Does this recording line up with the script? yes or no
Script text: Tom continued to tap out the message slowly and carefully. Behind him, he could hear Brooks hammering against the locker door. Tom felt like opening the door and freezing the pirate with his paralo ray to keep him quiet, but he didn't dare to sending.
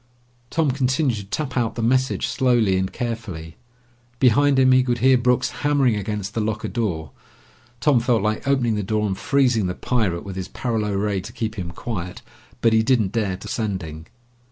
yes